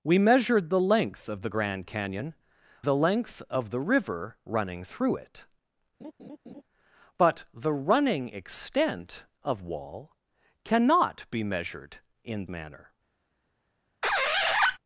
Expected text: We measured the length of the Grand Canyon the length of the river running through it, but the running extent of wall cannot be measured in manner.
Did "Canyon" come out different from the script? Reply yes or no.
no